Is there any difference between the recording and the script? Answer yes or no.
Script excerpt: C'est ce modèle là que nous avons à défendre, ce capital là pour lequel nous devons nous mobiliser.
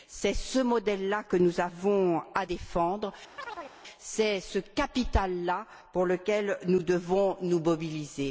yes